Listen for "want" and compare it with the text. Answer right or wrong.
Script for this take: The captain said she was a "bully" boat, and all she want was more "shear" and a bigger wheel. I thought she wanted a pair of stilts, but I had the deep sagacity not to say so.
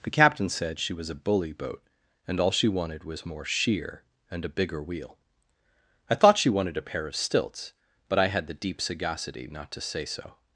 wrong